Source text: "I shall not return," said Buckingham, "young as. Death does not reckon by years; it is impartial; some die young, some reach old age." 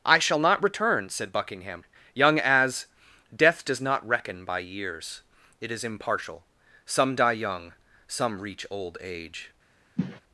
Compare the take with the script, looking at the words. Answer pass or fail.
pass